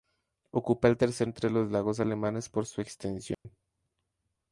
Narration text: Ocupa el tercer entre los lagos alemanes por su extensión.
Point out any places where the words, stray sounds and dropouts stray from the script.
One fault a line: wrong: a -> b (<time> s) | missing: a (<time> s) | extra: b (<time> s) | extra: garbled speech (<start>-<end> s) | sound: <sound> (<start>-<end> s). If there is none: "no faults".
sound: dropout (3.3-3.4 s)